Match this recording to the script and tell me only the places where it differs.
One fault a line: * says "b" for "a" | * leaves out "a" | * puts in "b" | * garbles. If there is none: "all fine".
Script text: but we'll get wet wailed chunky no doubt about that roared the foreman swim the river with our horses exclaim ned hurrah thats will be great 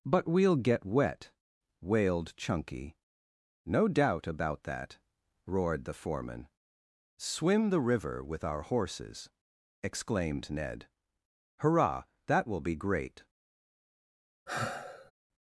* says "exclaimed" for "exclaim"
* says "that" for "thats"